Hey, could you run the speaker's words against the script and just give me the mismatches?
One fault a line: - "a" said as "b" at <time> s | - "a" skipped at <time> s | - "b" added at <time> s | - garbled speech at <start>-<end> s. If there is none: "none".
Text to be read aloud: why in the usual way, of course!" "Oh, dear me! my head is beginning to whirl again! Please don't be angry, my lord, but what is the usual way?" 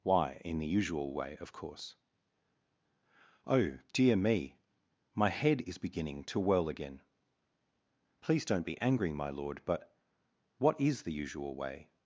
none